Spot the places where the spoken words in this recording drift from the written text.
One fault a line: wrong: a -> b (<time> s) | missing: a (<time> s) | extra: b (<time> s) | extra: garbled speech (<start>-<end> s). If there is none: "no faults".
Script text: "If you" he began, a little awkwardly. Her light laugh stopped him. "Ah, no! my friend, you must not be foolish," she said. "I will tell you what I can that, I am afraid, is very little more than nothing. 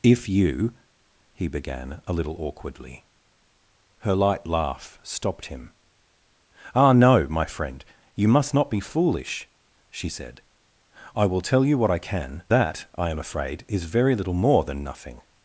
no faults